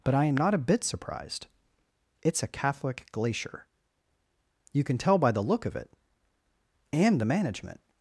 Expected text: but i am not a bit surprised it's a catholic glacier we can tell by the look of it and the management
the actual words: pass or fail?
fail